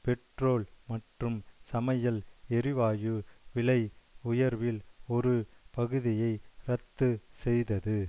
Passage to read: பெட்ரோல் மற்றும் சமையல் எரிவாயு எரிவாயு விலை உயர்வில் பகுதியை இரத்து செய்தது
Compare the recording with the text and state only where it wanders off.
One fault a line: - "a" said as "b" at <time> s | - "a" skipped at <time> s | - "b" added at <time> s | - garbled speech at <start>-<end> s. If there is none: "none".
- "எரிவாயு" skipped at 3.1 s
- "ஒரு" added at 5.1 s